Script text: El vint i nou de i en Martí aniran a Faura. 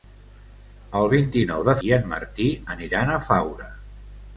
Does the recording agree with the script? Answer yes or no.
yes